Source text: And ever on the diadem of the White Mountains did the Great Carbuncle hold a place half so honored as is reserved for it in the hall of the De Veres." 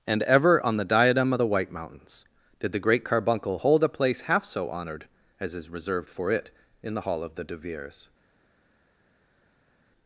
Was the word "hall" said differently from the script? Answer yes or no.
no